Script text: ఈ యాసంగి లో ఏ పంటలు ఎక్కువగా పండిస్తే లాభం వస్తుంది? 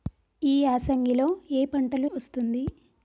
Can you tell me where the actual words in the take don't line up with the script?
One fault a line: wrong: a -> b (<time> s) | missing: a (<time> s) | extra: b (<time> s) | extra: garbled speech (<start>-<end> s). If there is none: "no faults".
missing: ఎక్కువగా పండిస్తే లాభం (2.1 s)